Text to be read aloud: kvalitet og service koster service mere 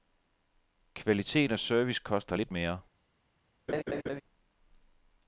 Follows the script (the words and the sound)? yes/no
no